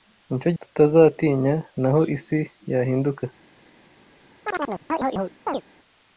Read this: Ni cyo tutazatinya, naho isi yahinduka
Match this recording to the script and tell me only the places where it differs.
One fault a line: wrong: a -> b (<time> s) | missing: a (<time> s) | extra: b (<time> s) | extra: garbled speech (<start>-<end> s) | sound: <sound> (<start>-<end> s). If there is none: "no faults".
sound: chirp (4.4-5.6 s)